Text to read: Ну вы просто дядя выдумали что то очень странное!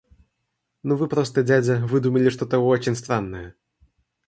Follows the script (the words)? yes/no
yes